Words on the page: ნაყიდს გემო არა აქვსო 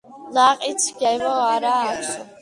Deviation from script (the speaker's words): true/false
false